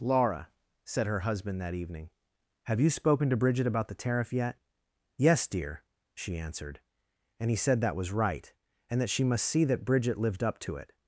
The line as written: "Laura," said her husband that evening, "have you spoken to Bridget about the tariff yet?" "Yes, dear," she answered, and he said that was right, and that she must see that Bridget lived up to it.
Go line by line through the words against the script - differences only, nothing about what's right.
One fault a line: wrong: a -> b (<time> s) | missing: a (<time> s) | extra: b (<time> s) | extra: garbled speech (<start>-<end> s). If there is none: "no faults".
no faults